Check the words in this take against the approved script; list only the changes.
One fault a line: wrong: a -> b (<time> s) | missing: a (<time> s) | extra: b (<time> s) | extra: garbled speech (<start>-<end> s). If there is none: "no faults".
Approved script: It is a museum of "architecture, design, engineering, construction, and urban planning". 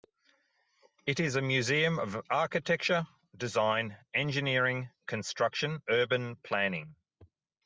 missing: and (5.8 s)